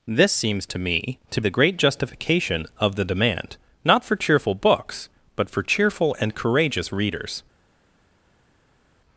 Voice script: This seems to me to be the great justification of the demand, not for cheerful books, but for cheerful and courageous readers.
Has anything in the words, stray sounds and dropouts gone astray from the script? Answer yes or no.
yes